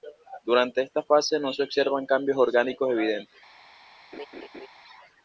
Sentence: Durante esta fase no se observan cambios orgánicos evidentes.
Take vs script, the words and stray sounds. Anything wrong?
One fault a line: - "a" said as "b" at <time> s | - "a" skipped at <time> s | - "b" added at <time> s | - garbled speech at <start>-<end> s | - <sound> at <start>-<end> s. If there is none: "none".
- laugh at 4.1-4.7 s